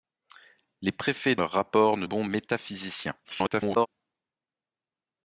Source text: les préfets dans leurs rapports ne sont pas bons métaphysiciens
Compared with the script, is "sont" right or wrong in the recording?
wrong